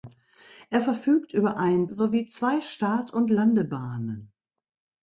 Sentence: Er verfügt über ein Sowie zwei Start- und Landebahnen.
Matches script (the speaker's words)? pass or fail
pass